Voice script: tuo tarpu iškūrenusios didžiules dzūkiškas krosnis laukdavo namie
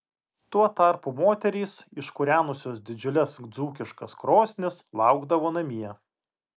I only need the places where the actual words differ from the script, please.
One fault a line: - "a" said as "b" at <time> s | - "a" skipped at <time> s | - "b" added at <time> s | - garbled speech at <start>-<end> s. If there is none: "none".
- "moterys" added at 1.2 s